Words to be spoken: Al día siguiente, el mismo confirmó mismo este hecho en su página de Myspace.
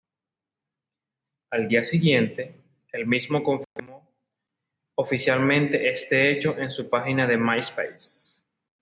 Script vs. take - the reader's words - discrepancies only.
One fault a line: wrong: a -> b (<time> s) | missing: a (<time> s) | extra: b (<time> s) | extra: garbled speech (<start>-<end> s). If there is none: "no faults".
wrong: mismo -> oficialmente (4.9 s)